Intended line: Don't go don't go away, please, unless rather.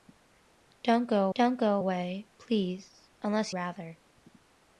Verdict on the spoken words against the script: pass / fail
pass